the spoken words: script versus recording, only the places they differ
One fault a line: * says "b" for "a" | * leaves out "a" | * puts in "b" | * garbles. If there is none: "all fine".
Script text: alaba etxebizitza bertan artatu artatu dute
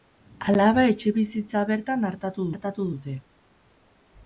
all fine